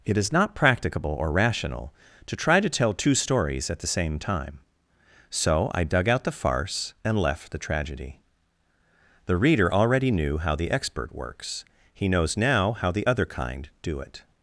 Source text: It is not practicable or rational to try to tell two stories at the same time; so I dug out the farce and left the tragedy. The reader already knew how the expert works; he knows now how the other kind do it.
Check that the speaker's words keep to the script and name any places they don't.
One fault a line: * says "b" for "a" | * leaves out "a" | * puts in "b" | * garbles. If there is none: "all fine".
all fine